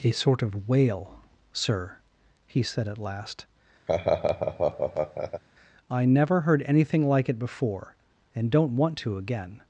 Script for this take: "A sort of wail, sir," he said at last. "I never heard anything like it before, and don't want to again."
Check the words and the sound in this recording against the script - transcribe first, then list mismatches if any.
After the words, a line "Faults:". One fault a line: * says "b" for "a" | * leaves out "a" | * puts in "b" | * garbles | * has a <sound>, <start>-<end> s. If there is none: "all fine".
"A sort of wail, sir," he said at last. "I never heard anything like it before, and don't want to again."
Faults:
* has a laugh, 3.9-5.4 s